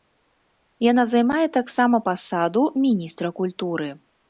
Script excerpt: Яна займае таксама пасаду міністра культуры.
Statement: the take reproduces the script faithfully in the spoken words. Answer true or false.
true